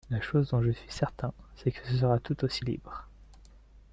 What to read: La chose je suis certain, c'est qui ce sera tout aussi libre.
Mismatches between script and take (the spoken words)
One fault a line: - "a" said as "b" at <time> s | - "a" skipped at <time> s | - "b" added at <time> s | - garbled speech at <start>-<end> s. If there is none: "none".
- "dont" added at 0.5 s
- "qui" said as "que" at 1.7 s